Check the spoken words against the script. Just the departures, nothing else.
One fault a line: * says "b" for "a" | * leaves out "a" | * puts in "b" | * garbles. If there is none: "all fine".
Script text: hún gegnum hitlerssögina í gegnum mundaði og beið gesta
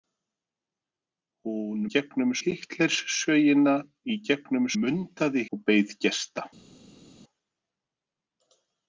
all fine